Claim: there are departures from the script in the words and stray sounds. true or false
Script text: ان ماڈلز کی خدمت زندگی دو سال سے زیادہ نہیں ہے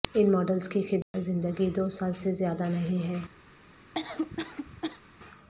true